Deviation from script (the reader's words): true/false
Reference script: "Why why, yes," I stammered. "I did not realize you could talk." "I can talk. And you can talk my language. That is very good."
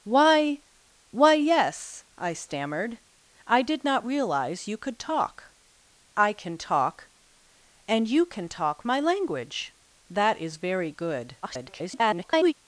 true